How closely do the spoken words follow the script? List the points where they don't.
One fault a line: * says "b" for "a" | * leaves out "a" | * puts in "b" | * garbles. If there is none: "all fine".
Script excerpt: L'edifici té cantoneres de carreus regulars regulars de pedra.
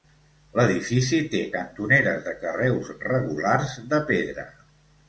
* leaves out "regulars"